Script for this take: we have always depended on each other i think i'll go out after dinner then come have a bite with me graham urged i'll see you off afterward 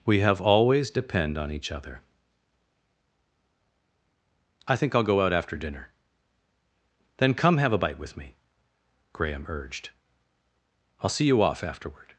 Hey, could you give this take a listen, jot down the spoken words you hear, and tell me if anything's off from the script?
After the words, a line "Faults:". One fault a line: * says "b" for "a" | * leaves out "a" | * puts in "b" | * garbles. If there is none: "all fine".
we have always depend on each other i think i'll go out after dinner then come have a bite with me graham urged i'll see you off afterward
Faults:
* says "depend" for "depended"